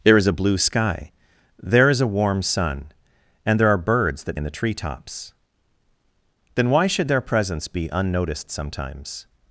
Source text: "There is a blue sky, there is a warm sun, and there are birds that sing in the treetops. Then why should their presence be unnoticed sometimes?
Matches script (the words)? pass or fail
fail